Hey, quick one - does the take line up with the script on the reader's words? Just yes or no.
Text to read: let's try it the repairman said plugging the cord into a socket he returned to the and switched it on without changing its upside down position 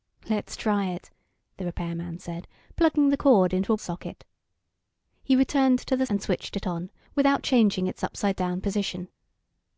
yes